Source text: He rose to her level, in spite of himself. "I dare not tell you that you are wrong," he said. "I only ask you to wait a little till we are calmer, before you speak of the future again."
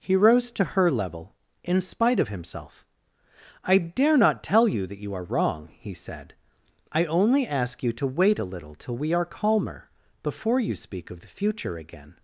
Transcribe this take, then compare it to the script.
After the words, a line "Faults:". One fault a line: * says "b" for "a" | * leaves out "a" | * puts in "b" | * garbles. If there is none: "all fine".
He rose to her level, in spite of himself. "I dare not tell you that you are wrong," he said. "I only ask you to wait a little till we are calmer, before you speak of the future again."
Faults:
all fine